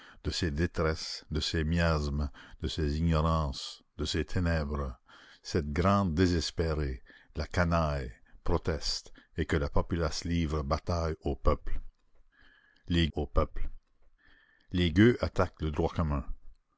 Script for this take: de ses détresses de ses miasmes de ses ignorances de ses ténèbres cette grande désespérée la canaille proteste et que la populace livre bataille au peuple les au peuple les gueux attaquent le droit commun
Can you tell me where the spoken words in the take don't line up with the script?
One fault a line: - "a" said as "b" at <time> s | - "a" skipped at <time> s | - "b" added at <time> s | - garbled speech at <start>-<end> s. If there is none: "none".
none